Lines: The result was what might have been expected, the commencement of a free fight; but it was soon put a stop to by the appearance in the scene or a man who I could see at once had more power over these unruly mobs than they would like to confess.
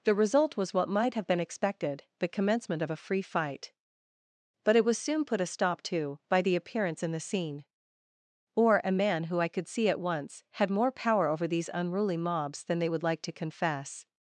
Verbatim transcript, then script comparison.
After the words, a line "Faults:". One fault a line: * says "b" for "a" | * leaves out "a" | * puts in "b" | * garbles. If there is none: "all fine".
The result was what might have been expected, the commencement of a free fight; but it was soon put a stop to by the appearance in the scene or a man who I could see at once had more power over these unruly mobs than they would like to confess.
Faults:
all fine